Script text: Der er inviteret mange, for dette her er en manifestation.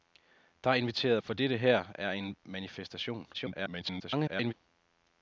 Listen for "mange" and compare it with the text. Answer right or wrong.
wrong